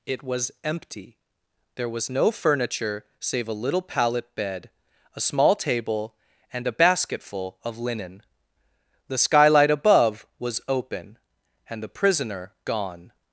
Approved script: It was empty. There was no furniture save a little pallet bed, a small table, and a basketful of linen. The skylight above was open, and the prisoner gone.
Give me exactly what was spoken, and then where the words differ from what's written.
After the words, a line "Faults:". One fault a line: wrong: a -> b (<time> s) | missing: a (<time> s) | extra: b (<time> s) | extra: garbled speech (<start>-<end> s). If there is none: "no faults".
It was empty. There was no furniture save a little pallet bed, a small table, and a basketful of linen. The skylight above was open, and the prisoner gone.
Faults:
no faults